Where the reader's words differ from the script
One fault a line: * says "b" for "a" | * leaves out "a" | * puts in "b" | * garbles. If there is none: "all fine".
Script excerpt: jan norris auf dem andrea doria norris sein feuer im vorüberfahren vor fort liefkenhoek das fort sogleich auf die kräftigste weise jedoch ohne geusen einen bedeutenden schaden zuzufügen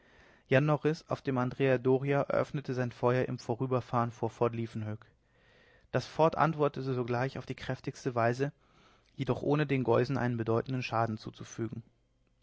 * says "eröffnete" for "norris"
* puts in "antwortete"
* puts in "den"